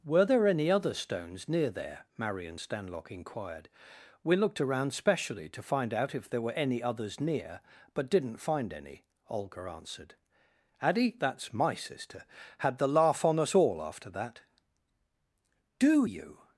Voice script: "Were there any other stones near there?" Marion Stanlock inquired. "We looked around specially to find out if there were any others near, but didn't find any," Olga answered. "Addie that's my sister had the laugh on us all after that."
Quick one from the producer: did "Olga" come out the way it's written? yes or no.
yes